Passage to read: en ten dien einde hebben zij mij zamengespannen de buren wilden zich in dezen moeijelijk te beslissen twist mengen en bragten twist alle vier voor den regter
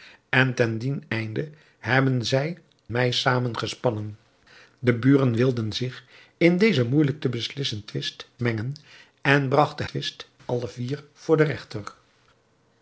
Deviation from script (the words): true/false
false